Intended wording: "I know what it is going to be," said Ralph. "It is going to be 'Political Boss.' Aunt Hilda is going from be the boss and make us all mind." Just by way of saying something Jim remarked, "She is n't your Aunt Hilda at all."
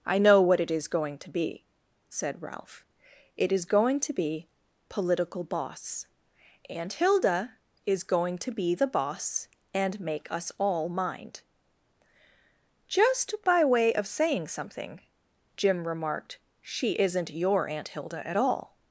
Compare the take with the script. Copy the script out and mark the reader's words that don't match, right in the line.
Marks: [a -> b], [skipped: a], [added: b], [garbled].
"I know what it is going to be," said Ralph. "It is going to be 'Political Boss.' Aunt Hilda is going [from -> to] be the boss and make us all mind." Just by way of saying something Jim remarked, "She is n't your Aunt Hilda at all."